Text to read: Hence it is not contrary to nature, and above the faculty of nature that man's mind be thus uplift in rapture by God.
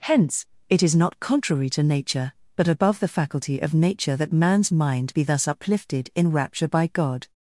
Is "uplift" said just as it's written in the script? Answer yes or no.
no